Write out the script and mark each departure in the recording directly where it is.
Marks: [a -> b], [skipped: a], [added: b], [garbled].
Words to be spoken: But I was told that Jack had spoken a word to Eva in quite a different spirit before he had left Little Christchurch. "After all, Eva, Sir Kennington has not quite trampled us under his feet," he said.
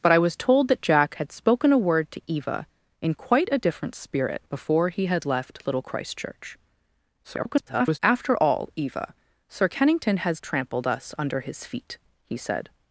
But I was told that Jack had spoken a word to Eva in quite a different spirit before he had left Little Christchurch. [garbled] "After all, Eva, Sir Kennington has [skipped: not quite] trampled us under his feet," he said.